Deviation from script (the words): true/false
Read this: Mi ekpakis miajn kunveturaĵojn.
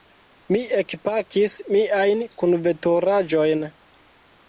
false